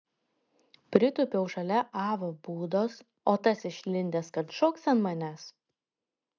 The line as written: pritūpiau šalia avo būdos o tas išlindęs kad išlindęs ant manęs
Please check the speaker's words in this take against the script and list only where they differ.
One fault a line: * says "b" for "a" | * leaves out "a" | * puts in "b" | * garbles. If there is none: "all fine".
* says "šoks" for "išlindęs"